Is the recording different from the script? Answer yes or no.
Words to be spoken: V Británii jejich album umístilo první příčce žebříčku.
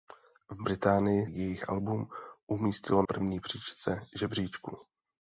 no